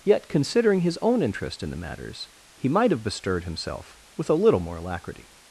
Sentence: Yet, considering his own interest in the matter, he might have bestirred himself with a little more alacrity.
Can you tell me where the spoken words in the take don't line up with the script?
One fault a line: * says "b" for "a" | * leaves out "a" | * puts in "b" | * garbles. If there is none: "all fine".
* says "matters" for "matter"